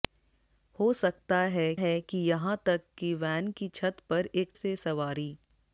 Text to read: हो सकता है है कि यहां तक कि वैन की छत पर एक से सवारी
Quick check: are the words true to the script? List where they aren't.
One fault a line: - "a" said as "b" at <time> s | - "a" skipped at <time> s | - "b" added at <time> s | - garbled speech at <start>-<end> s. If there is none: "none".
none